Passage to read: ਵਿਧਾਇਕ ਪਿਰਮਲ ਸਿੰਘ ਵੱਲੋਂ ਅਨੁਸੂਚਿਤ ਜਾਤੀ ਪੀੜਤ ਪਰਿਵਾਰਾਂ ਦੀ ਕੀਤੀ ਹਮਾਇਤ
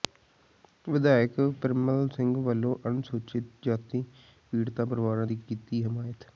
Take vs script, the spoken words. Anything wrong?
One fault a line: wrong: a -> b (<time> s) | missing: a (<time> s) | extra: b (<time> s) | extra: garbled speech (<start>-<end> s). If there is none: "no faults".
no faults